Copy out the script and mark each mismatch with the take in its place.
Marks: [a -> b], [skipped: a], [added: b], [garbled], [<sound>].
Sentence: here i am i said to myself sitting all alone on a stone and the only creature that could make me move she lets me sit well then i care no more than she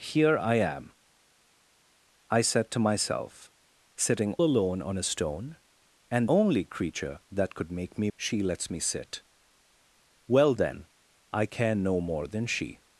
here i am i said to myself sitting [skipped: all] alone on a stone and [skipped: the] only creature that could make me [skipped: move] she lets me sit well then i care no more than she